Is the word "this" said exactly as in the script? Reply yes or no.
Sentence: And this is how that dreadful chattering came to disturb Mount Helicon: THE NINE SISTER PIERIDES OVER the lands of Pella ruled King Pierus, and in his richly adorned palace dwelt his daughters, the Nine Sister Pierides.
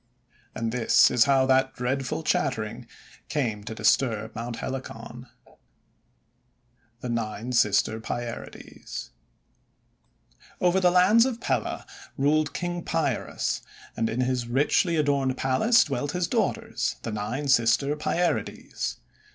yes